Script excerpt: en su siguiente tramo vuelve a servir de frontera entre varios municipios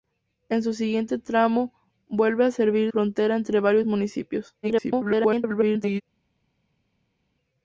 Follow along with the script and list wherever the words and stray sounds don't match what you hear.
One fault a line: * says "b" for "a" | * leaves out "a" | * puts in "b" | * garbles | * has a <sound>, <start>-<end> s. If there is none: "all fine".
* leaves out "de"
* garbles